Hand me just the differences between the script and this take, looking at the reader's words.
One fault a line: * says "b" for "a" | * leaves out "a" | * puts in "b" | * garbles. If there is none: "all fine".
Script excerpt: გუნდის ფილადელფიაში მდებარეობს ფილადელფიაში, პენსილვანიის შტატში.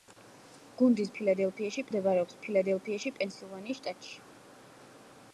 all fine